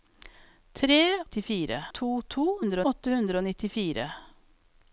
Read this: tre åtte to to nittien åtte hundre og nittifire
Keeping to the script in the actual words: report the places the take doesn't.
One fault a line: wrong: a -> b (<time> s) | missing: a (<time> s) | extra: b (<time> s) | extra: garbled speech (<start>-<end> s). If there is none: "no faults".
wrong: åtte -> nittifire (1.2 s)
wrong: nittien -> hundre (2.6 s)